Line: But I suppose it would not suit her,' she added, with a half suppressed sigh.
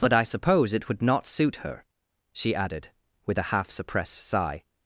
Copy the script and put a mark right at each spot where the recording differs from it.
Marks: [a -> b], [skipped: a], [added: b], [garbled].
But I suppose it would not suit her,' she added, with a half suppressed sigh.